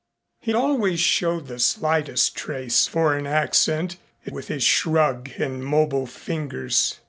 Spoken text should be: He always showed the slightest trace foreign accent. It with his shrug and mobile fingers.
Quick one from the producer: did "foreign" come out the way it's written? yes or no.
yes